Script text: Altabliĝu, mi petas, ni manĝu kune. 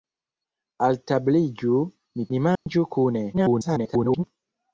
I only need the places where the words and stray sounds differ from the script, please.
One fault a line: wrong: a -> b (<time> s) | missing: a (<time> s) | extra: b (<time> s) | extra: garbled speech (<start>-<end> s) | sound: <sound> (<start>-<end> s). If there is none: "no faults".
missing: petas (2.2 s)
sound: dropout (2.6-2.7 s)
extra: garbled speech (3.3-4.2 s)